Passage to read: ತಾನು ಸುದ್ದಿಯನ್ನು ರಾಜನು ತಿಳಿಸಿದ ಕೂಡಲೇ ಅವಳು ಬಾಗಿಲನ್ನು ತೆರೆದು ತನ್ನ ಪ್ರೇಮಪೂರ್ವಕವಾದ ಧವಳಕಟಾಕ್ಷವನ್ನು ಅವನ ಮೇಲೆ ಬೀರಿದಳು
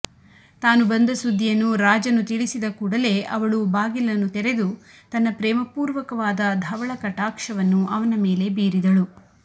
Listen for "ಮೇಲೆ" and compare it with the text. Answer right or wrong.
right